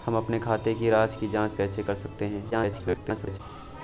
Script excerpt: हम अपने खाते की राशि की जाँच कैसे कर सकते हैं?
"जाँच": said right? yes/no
yes